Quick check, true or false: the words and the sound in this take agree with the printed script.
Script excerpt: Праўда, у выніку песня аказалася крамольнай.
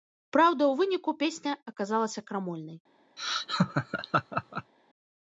false